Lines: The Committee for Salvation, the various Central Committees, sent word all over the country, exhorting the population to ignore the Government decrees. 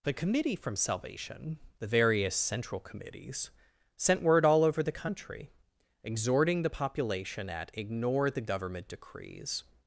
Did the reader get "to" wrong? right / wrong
wrong